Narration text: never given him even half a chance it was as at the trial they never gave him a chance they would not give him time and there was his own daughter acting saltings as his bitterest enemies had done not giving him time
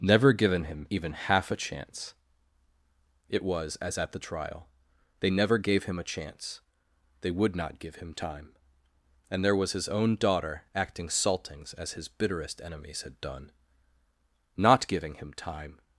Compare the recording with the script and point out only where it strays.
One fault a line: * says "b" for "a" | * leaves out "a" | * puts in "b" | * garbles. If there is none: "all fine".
all fine